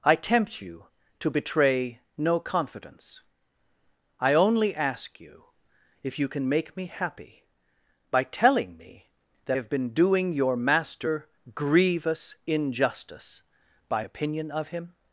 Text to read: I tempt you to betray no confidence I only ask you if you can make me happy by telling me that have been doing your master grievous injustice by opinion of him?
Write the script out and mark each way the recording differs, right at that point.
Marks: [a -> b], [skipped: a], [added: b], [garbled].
I tempt you to betray no confidence I only ask you if you can make me happy by telling me that have been doing your master grievous injustice by opinion of him?